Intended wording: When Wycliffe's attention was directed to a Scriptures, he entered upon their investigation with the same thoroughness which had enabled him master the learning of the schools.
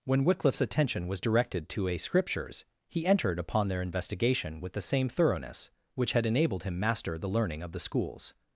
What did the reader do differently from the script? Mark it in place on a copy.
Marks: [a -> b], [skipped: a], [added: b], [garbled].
When Wycliffe's attention was directed to a Scriptures, he entered upon their investigation with the same thoroughness which had enabled him master the learning of the schools.